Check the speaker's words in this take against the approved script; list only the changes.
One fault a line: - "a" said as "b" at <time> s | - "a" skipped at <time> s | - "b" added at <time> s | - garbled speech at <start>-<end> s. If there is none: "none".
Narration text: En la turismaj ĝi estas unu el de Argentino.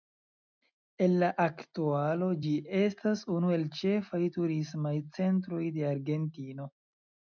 - "turismaj" said as "aktualo" at 1.4 s
- "ĉefaj turismaj centroj" added at 3.8 s